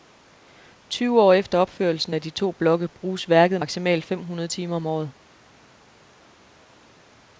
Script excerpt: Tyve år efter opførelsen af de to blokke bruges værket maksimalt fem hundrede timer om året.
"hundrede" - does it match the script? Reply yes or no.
yes